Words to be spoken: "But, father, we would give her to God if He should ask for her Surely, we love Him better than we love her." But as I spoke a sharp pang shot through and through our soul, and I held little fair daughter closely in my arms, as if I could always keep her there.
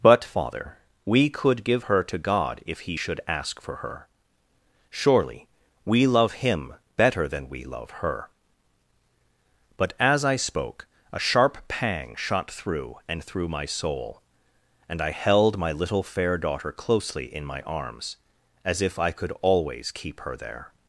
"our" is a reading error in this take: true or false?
true